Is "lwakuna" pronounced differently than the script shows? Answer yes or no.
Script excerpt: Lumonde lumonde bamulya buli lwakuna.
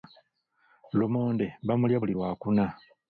no